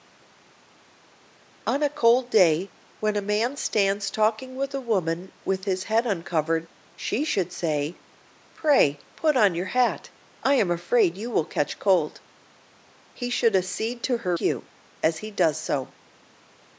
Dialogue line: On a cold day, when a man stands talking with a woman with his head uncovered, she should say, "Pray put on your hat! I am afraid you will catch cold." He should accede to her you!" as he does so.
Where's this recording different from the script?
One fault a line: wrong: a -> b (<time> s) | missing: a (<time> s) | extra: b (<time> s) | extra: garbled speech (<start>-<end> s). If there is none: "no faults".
no faults